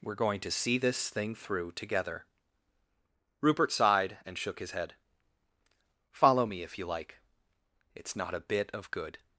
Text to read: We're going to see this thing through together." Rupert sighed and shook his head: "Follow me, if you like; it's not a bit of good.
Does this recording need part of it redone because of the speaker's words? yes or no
no